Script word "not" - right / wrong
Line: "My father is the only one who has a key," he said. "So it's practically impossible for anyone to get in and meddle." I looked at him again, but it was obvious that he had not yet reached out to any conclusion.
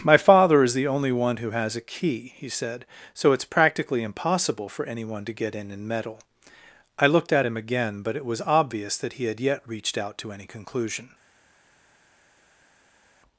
wrong